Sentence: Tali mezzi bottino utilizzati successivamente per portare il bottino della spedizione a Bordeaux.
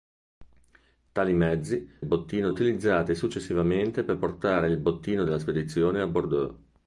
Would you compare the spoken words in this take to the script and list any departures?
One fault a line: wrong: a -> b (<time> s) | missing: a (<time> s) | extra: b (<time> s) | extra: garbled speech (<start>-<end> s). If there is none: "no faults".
no faults